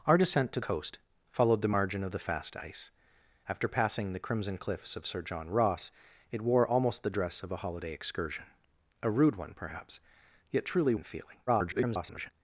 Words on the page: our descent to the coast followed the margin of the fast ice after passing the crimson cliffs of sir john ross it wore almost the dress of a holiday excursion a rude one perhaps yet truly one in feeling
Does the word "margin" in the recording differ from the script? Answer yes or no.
no